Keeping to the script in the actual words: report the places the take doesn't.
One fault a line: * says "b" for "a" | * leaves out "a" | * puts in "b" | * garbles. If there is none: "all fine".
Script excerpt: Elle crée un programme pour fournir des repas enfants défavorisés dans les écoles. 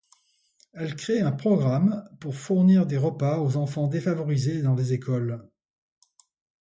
* puts in "aux"